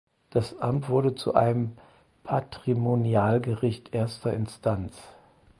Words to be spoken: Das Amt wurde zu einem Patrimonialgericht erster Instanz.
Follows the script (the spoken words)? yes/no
yes